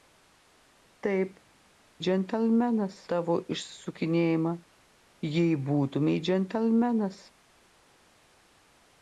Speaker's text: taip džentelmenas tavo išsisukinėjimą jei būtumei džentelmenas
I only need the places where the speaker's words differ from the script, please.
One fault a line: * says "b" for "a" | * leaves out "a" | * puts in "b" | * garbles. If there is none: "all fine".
all fine